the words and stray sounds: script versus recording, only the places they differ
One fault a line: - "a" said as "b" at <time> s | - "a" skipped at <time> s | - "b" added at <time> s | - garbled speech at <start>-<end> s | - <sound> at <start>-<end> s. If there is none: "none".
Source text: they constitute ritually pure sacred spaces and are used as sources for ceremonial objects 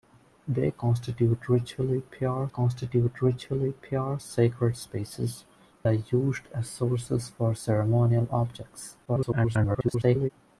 - "constitute ritually pure" added at 2.5 s
- "and" skipped at 5.4 s
- garbled speech at 9.1-10.3 s